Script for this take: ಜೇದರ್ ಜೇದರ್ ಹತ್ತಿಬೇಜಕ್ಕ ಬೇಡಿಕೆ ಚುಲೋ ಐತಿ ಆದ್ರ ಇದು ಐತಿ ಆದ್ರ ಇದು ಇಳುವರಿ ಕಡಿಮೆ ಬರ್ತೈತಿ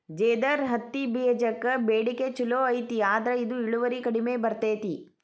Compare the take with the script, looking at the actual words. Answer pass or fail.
fail